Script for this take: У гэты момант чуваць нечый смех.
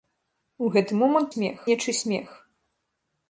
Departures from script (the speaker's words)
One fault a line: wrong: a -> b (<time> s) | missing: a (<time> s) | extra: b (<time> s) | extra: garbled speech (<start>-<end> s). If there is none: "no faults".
wrong: чуваць -> смех (1.3 s)